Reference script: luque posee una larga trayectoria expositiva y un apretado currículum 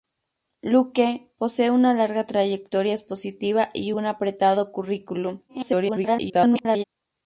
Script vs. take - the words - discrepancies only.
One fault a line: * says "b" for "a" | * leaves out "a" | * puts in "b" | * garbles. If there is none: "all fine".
* garbles